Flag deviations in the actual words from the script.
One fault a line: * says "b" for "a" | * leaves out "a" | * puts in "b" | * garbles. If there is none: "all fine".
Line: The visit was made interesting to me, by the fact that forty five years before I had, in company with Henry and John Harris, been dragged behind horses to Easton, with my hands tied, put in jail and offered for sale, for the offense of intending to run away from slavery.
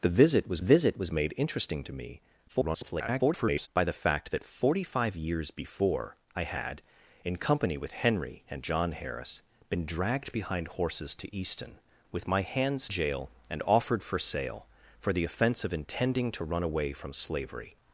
* puts in "visit was"
* garbles
* leaves out "tied put in"